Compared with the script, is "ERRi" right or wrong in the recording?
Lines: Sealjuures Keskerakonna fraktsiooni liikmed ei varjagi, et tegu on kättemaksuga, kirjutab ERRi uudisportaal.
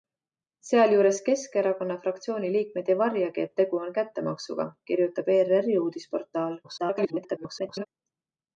right